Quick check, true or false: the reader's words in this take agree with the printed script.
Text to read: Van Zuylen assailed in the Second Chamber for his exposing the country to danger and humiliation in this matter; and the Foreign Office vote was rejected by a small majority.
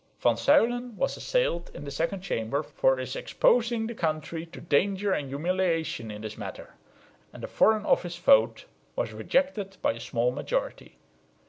false